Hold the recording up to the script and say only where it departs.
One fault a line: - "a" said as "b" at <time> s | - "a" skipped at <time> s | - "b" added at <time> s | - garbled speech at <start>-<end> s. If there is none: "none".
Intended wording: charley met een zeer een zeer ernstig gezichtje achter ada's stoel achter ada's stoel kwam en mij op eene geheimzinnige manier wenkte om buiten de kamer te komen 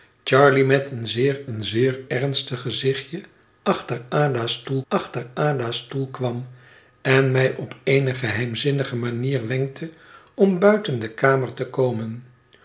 none